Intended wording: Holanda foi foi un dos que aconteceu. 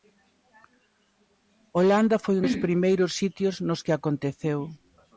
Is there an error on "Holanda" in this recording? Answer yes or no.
no